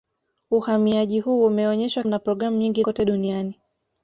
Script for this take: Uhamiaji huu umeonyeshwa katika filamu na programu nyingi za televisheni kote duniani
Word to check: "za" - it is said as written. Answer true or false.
false